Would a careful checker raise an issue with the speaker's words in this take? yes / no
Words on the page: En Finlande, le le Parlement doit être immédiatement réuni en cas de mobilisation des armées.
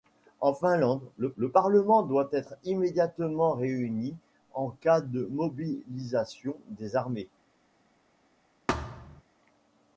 no